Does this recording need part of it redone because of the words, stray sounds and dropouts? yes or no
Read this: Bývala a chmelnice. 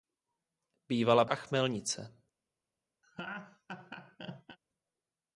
yes